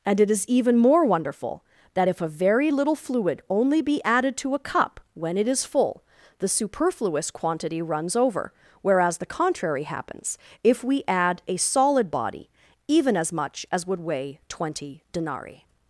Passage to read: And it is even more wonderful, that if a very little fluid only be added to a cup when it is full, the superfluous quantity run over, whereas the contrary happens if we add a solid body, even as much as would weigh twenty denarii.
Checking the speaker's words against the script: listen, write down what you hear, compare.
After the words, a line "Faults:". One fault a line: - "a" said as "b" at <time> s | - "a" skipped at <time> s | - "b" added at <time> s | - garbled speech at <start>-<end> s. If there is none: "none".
And it is even more wonderful, that if a very little fluid only be added to a cup when it is full, the superfluous quantity runs over, whereas the contrary happens if we add a solid body, even as much as would weigh twenty denarii.
Faults:
- "run" said as "runs" at 7.8 s